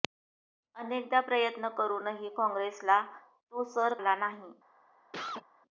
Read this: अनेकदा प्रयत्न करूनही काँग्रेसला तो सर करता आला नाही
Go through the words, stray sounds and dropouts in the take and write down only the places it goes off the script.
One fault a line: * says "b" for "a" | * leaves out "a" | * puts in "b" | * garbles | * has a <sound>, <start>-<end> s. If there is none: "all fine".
* leaves out "करता"
* has a cough, 5.1-5.5 s